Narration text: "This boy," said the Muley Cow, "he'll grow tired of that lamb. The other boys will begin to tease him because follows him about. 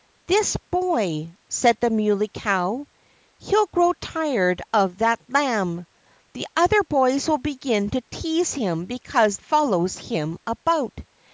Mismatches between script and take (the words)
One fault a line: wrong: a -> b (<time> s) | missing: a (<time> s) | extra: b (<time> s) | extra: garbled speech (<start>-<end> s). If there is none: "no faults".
no faults